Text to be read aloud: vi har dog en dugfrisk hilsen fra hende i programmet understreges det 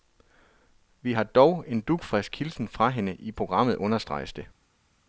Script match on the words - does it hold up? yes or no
yes